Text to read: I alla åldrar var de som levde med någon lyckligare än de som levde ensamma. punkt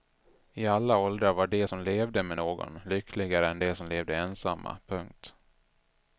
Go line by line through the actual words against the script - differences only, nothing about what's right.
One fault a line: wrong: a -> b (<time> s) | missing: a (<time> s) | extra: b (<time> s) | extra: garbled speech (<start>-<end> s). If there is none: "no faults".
no faults